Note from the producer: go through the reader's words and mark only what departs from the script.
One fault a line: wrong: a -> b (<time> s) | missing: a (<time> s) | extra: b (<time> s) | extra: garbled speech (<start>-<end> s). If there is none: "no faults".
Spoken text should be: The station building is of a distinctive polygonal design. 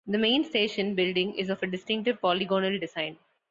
extra: main (0.2 s)